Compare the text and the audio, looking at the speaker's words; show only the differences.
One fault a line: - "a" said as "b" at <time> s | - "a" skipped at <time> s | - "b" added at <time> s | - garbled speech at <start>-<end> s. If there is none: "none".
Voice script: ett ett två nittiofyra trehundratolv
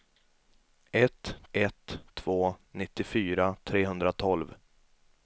none